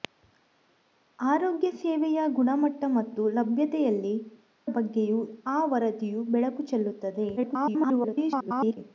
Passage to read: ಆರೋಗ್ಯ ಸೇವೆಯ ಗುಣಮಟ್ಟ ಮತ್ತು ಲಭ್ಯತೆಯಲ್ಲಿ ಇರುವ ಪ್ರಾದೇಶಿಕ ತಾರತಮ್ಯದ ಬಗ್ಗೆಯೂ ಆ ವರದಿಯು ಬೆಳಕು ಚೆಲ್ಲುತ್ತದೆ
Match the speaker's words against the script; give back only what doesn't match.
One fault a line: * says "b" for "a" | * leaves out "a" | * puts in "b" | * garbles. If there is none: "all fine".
* leaves out "ಇರುವ ಪ್ರಾದೇಶಿಕ ತಾರತಮ್ಯದ"
* garbles